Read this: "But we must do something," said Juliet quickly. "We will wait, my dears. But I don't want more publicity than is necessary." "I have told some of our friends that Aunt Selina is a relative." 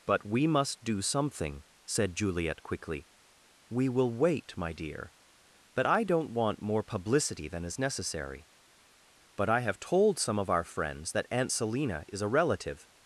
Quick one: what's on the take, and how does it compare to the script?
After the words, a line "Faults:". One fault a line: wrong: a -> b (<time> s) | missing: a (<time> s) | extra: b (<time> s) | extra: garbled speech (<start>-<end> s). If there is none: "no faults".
"But we must do something," said Juliet quickly. "We will wait, my dear. But I don't want more publicity than is necessary." "But I have told some of our friends that Aunt Selina is a relative."
Faults:
wrong: dears -> dear (4.7 s)
extra: But (9.3 s)